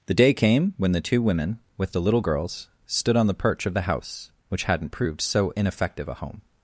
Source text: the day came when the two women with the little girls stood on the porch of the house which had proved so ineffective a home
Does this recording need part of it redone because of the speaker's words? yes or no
yes